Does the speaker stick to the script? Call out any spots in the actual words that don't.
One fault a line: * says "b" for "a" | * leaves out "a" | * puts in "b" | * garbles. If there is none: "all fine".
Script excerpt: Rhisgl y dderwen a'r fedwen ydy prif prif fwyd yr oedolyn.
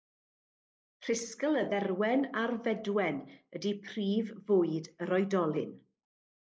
* leaves out "prif"